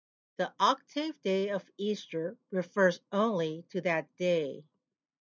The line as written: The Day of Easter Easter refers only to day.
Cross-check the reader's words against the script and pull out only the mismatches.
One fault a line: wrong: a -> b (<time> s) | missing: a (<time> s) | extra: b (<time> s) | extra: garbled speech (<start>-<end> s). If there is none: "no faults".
extra: Octave (0.6 s)
missing: Easter (2.4 s)
extra: that (3.8 s)